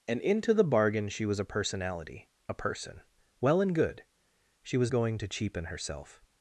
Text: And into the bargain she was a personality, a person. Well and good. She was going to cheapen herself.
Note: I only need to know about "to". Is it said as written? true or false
true